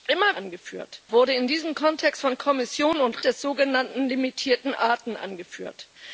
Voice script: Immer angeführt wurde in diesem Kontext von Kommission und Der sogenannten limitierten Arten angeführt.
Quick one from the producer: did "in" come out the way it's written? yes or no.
yes